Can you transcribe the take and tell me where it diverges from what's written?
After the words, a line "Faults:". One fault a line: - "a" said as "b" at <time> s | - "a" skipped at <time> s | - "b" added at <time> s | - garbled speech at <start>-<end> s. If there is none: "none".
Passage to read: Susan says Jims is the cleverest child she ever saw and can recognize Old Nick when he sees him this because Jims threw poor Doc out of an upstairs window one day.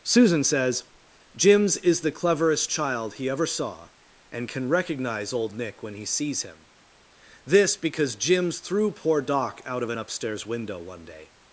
Susan says Jims is the cleverest child he ever saw and can recognize Old Nick when he sees him this because Jims threw poor Doc out of an upstairs window one day.
Faults:
- "she" said as "he" at 3.1 s